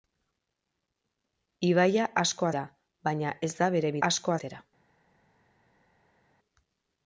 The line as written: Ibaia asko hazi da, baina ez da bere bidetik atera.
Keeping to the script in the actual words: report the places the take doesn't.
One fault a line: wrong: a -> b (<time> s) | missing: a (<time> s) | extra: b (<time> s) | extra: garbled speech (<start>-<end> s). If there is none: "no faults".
missing: hazi (2.5 s)
wrong: bidetik -> asko (4.1 s)